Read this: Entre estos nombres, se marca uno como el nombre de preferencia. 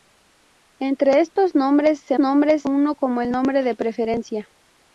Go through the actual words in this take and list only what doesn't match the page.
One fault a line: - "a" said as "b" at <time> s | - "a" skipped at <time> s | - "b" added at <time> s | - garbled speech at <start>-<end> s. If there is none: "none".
- "marca" said as "nombres" at 2.2 s